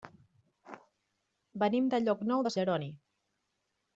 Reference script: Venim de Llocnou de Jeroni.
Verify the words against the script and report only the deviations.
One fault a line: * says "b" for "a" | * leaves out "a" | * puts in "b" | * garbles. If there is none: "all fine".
all fine